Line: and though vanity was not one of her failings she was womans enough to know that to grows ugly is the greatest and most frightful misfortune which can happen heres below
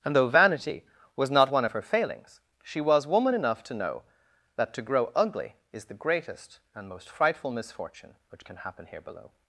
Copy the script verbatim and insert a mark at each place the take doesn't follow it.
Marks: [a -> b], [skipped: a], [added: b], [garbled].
and though vanity was not one of her failings she was [womans -> woman] enough to know that to [grows -> grow] ugly is the greatest and most frightful misfortune which can happen [heres -> here] below